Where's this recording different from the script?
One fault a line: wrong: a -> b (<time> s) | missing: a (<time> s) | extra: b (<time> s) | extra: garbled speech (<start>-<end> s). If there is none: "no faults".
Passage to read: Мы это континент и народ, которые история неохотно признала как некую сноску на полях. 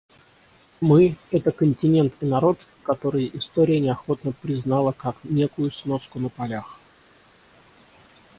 no faults